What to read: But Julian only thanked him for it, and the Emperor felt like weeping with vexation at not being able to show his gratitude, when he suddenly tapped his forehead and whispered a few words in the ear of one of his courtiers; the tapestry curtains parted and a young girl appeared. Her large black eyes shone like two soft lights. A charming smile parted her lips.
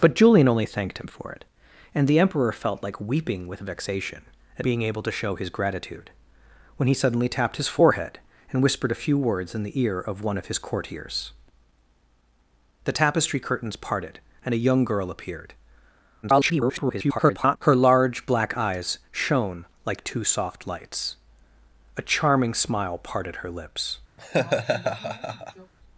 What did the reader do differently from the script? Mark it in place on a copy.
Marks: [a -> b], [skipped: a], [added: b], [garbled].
But Julian only thanked him for it, and the Emperor felt like weeping with vexation at [skipped: not] being able to show his gratitude, when he suddenly tapped his forehead and whispered a few words in the ear of one of his courtiers; the tapestry curtains parted and a young girl appeared. [garbled] Her large black eyes shone like two soft lights. A charming smile parted her lips.